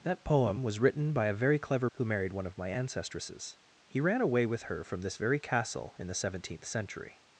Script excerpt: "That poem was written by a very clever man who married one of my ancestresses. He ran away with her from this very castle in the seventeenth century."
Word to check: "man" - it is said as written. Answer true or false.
false